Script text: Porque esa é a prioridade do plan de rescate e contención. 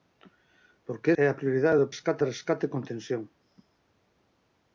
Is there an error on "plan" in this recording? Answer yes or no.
yes